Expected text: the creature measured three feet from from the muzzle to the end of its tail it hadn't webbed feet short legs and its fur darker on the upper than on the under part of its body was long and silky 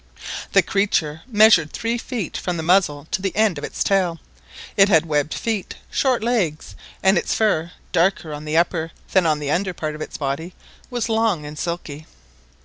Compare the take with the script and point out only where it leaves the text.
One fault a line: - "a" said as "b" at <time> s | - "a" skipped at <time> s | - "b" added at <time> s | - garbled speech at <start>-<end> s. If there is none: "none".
- "from" skipped at 2.6 s
- "hadn't" said as "had" at 4.9 s